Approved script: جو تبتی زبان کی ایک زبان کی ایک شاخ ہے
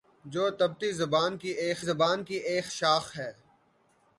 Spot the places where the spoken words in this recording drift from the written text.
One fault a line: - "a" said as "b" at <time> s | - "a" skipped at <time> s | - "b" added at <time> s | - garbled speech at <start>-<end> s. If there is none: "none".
none